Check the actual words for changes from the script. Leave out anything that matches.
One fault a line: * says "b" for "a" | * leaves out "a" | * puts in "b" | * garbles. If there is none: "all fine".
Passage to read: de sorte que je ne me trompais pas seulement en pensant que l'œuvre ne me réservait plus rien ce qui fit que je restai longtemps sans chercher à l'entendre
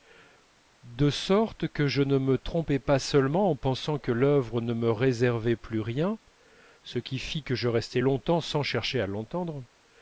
all fine